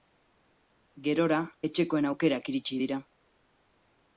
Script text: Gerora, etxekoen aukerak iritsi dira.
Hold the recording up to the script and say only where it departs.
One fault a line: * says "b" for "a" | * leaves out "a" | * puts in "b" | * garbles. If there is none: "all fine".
all fine